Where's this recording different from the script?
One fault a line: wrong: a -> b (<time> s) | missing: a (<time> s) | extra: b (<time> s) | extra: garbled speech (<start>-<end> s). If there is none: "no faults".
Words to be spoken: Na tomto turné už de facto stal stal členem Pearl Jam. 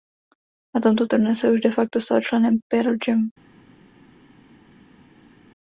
extra: se (1.4 s)
missing: stal (2.2 s)